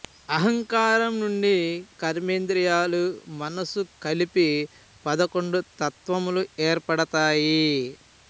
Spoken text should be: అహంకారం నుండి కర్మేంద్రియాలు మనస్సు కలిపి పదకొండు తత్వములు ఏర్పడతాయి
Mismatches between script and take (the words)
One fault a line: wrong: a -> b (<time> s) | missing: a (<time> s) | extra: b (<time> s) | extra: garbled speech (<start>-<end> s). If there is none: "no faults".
no faults